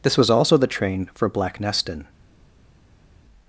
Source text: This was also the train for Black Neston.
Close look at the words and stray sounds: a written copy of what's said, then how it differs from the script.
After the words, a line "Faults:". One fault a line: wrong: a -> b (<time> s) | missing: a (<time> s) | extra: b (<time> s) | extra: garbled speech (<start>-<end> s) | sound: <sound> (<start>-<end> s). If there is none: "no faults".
This was also the train for Black Neston.
Faults:
no faults